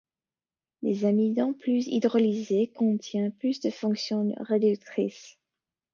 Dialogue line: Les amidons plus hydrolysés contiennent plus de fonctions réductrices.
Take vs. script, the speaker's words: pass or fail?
pass